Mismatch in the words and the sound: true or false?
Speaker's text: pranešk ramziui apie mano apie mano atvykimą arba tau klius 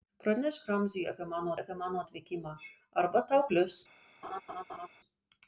true